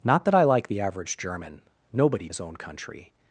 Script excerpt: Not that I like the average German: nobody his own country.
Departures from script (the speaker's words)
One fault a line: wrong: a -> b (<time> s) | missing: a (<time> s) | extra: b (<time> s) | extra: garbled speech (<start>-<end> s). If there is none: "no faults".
no faults